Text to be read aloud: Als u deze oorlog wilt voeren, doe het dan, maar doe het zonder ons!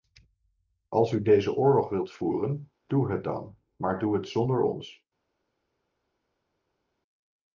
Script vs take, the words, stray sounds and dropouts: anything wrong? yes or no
no